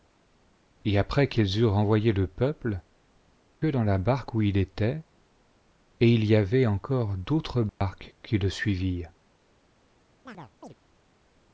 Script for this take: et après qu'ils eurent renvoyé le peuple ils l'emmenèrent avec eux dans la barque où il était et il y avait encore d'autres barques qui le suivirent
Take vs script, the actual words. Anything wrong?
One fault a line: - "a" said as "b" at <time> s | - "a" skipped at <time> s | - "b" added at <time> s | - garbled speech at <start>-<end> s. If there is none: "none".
- "ils l'emmenèrent avec" skipped at 2.8 s